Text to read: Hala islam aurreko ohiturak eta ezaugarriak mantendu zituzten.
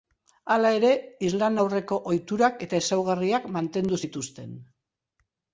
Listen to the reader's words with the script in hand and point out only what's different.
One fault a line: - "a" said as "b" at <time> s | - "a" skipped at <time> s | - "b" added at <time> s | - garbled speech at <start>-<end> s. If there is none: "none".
- "ere" added at 0.8 s